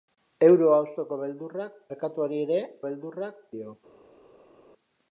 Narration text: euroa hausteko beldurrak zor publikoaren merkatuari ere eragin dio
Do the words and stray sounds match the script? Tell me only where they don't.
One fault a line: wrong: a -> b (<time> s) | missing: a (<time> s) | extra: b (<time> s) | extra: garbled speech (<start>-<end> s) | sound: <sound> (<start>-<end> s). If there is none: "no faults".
missing: zor publikoaren (1.8 s)
wrong: eragin -> beldurrak (2.9 s)